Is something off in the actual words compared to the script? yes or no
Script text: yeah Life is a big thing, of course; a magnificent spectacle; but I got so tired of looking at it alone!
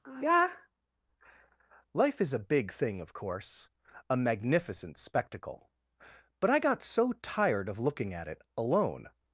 no